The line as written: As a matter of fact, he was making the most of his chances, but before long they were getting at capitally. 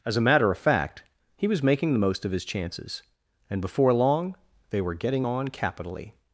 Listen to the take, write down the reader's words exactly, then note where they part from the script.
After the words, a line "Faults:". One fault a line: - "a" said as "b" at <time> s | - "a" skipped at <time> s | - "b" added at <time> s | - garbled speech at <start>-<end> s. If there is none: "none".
As a matter of fact, he was making the most of his chances, and before long they were getting on capitally.
Faults:
- "but" said as "and" at 3.5 s
- "at" said as "on" at 5.3 s